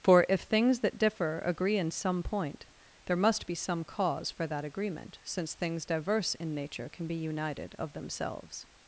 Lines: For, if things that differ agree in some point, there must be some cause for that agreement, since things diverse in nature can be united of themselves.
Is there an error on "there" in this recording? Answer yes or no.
no